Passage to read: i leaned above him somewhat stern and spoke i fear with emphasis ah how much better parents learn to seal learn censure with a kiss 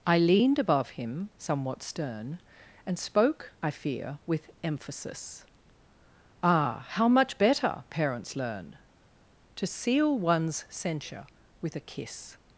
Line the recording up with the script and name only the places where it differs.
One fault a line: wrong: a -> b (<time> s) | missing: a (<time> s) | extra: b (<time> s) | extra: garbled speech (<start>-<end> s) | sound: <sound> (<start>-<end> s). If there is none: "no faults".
wrong: learn -> one's (10.2 s)